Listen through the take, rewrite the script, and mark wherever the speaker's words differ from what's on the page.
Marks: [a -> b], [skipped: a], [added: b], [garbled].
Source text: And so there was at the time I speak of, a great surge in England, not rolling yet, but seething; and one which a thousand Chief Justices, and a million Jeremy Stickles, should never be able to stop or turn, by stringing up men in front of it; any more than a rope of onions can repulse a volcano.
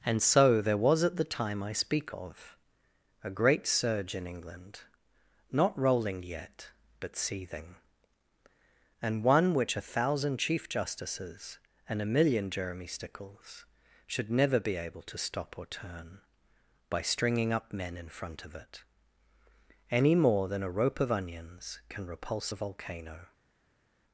And so there was at the time I speak of, a great surge in England, not rolling yet, but seething; and one which a thousand Chief Justices, and a million Jeremy Stickles, should never be able to stop or turn, by stringing up men in front of it; any more than a rope of onions can repulse a volcano.